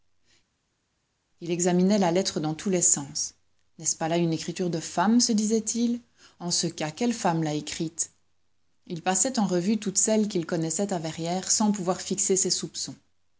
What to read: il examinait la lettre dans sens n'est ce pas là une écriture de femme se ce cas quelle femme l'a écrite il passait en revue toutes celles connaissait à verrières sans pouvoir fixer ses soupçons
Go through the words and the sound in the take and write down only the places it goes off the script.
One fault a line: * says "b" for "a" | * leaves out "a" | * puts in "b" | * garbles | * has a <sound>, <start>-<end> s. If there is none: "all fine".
* puts in "tous les"
* puts in "disait il en"
* puts in "qu'il"